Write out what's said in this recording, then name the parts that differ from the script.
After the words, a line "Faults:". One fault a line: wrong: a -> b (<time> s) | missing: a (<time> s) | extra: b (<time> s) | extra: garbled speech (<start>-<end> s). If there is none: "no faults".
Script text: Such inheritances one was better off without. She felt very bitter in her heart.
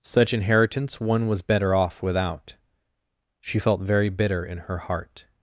Such inheritance one was better off without. She felt very bitter in her heart.
Faults:
wrong: inheritances -> inheritance (0.3 s)